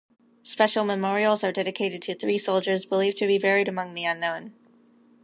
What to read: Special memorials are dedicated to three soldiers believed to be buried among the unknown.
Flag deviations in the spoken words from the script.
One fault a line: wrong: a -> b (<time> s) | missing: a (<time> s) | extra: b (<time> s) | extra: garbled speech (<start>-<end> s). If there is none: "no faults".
no faults